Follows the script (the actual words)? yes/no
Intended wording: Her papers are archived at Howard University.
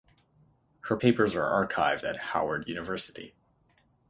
yes